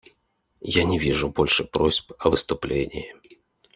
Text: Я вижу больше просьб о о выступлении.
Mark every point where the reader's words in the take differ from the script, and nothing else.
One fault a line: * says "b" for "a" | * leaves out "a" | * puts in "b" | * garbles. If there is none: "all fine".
* puts in "не"
* leaves out "о"